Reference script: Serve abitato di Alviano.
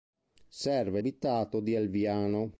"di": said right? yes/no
yes